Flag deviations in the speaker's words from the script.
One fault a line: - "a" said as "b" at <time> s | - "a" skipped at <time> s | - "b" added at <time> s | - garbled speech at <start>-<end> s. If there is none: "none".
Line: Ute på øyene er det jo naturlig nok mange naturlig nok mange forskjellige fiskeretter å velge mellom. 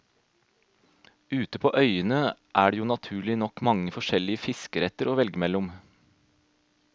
- "naturlig nok mange" skipped at 3.9 s